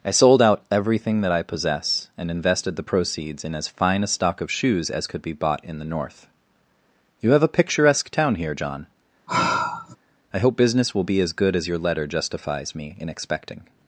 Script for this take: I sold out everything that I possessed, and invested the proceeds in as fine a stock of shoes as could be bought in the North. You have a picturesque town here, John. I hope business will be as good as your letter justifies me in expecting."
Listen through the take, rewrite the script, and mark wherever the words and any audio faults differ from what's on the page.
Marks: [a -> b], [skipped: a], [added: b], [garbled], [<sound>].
I sold out everything that I [possessed, -> possess] and invested the proceeds in as fine a stock of shoes as could be bought in the North. You have a picturesque town here, John. [sigh] I hope business will be as good as your letter justifies me in expecting."